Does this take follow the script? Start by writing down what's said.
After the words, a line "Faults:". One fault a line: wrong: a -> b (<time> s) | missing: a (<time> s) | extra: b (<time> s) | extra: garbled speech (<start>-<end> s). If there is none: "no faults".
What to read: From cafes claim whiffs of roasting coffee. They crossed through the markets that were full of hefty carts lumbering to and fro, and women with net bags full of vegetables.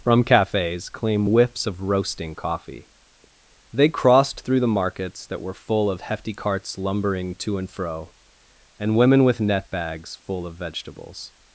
From cafes claim whiffs of roasting coffee. They crossed through the markets that were full of hefty carts lumbering to and fro, and women with net bags full of vegetables.
Faults:
no faults